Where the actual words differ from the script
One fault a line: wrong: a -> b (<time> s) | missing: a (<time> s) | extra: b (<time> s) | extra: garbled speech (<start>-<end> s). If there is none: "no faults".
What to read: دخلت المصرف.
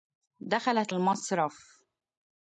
no faults